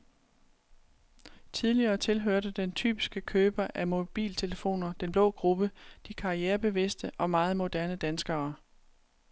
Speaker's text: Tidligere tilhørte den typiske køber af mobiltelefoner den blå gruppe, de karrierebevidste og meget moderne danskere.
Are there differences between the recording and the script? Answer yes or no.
no